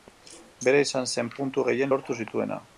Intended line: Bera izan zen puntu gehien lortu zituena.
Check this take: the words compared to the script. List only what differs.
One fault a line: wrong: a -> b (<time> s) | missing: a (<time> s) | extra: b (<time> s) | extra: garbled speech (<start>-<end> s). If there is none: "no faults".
no faults